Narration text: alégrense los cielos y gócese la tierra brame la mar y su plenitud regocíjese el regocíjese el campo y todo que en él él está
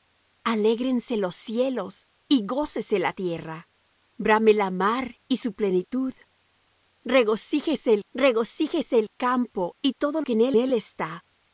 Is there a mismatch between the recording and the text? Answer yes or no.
no